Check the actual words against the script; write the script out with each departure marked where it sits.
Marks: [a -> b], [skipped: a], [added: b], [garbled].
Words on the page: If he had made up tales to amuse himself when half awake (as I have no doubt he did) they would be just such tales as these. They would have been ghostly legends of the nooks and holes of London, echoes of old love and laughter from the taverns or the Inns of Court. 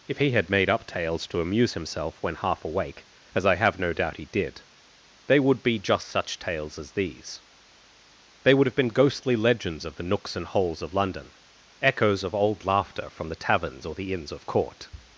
If he had made up tales to amuse himself when half awake (as I have no doubt he did) they would be just such tales as these. They would have been ghostly legends of the nooks and holes of London, echoes of old [skipped: love and] laughter from the taverns or the Inns of Court.